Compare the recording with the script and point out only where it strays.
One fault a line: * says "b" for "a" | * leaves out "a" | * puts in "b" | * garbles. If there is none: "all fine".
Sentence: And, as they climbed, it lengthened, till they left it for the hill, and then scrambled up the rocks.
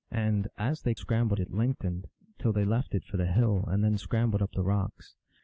* says "scrambled" for "climbed"